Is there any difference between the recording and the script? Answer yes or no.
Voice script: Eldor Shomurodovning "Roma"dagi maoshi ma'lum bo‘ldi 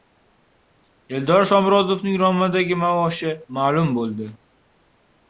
no